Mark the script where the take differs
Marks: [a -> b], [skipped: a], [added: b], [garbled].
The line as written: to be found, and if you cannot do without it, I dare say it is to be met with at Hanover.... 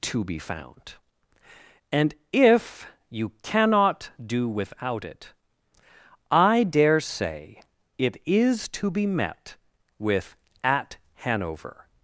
to be found, and if you cannot do without it, I dare say it is to be met with at Hanover....